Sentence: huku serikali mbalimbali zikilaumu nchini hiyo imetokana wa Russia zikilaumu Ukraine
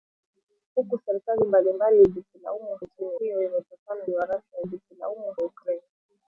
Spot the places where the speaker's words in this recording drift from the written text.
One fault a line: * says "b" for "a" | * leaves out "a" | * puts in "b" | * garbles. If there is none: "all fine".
all fine